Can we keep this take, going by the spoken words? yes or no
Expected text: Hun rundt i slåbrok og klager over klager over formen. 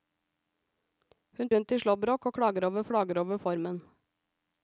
yes